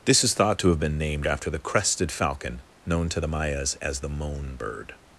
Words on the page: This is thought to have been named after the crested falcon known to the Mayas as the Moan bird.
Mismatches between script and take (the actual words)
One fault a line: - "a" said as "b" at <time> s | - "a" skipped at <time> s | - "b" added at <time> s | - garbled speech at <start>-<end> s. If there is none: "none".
none